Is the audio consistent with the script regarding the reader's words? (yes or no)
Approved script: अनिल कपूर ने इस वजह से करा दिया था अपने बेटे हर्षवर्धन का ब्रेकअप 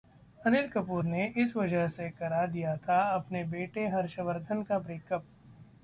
yes